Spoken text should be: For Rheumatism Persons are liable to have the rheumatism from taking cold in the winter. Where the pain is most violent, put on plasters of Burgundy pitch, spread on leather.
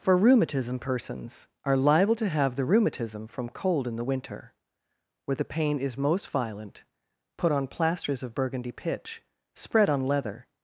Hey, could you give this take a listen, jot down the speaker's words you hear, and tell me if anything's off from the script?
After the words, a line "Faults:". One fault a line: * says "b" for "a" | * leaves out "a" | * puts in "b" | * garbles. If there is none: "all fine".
For Rheumatism Persons are liable to have the rheumatism from cold in the winter. Where the pain is most violent, put on plasters of Burgundy pitch, spread on leather.
Faults:
* leaves out "taking"